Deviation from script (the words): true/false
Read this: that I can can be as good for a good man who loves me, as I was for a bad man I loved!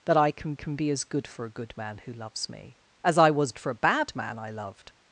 false